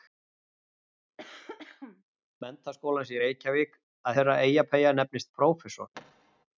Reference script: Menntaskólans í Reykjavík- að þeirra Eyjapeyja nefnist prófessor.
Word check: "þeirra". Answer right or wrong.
right